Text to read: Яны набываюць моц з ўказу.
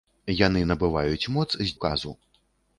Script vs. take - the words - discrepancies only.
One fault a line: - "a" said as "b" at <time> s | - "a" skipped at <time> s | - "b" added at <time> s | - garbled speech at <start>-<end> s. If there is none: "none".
none